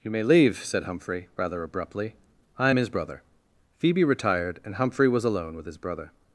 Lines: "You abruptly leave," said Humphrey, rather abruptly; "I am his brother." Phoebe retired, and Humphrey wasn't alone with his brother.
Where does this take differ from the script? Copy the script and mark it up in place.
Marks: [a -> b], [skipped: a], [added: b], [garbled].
"You [abruptly -> may] leave," said Humphrey, rather abruptly; "I am his brother." Phoebe retired, and Humphrey [wasn't -> was] alone with his brother.